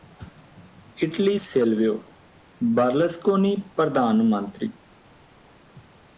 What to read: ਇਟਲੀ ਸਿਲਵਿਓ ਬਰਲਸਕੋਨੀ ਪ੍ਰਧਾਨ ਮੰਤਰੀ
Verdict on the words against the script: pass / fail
pass